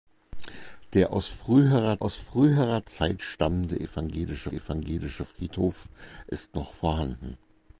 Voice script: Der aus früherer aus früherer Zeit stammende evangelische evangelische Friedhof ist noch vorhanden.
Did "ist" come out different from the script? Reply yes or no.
no